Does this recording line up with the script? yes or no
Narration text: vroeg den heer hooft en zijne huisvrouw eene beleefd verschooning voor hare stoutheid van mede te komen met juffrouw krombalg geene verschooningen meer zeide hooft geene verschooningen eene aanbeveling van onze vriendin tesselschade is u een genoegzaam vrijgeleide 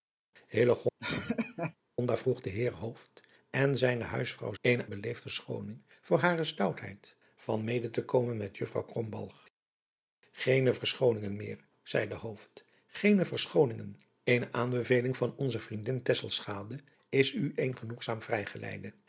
yes